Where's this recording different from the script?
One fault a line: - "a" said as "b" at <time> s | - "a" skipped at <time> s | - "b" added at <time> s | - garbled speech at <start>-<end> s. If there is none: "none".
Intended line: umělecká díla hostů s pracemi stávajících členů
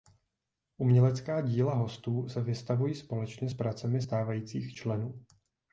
- "se vystavují společně" added at 2.3 s